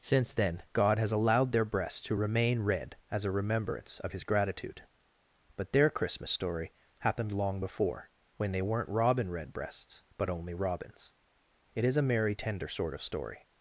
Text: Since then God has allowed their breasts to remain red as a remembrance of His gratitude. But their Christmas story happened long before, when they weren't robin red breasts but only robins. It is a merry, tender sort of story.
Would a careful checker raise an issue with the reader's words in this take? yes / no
no